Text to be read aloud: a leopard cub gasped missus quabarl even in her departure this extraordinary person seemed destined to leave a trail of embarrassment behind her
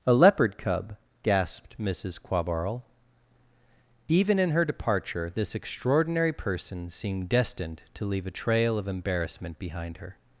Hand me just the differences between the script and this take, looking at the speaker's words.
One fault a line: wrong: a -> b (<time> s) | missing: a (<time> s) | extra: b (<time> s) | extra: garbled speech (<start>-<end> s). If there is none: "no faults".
no faults